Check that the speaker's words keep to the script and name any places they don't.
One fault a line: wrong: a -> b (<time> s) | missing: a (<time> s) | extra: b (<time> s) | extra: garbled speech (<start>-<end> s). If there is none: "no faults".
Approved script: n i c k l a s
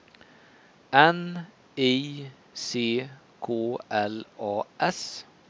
no faults